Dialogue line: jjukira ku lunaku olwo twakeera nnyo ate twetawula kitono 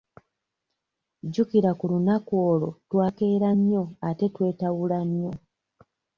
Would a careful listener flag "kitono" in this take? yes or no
yes